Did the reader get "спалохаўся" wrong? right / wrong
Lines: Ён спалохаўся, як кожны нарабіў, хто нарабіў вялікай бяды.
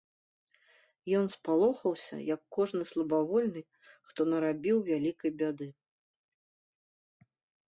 right